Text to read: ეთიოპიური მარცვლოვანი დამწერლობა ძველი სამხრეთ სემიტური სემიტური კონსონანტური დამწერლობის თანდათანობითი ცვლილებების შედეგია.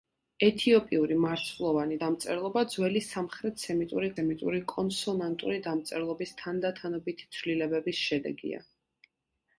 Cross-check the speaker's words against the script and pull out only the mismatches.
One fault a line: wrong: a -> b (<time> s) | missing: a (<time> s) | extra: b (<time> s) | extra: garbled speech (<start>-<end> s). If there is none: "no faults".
no faults